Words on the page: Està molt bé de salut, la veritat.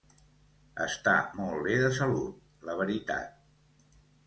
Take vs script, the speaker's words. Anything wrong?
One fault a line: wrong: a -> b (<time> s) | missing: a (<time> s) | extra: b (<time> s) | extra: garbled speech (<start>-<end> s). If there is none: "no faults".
no faults